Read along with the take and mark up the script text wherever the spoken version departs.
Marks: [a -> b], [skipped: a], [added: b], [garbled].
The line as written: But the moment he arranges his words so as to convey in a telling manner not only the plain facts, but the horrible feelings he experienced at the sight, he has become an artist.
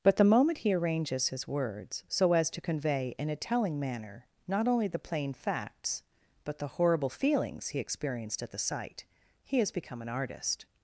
But the moment he arranges his words so as to convey in a telling manner not only the plain facts, but the horrible feelings he experienced at the sight, he has become an artist.